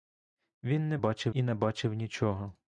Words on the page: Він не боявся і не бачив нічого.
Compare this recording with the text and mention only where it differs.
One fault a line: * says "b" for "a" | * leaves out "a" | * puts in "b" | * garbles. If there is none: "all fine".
* says "бачив" for "боявся"